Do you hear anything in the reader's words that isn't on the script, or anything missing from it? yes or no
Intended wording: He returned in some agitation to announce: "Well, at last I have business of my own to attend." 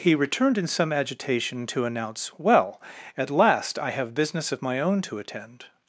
no